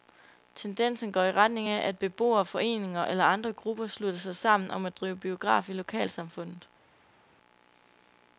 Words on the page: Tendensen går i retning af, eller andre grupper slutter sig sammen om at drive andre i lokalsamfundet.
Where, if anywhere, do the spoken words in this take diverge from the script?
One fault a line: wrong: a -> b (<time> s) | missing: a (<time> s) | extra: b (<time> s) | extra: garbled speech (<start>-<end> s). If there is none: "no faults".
extra: at beboere foreninger (1.9 s)
wrong: andre -> biograf (5.2 s)